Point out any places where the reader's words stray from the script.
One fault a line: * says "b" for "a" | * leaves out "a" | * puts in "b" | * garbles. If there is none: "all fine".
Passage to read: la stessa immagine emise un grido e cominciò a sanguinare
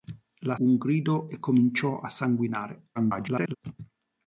* leaves out "stessa immagine emise"
* garbles